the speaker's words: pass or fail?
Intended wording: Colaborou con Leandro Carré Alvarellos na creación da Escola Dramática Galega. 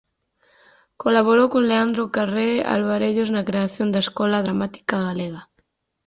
pass